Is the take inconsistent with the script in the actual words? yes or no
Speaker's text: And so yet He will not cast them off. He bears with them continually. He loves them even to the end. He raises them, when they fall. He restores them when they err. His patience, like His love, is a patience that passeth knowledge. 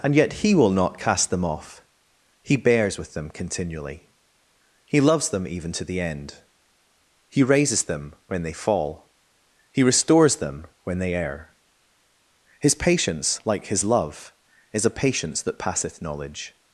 yes